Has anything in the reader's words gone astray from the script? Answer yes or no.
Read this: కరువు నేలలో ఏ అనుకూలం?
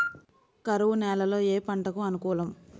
yes